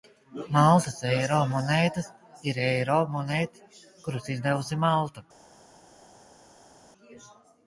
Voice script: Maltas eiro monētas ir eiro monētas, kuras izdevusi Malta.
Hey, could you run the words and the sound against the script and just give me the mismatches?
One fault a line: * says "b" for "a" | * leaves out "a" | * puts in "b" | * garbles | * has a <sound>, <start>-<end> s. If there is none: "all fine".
all fine